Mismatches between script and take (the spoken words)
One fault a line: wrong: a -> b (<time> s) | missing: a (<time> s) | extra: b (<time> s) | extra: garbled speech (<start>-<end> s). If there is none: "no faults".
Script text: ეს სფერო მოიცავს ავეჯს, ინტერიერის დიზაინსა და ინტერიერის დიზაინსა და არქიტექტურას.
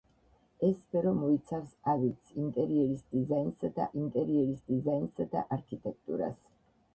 no faults